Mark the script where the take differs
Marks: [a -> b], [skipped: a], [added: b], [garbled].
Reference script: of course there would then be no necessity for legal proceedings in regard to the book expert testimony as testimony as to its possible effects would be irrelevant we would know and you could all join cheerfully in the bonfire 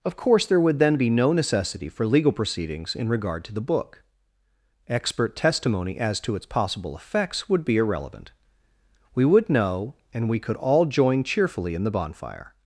of course there would then be no necessity for legal proceedings in regard to the book expert testimony as [skipped: testimony as] to its possible effects would be irrelevant we would know and [you -> we] could all join cheerfully in the bonfire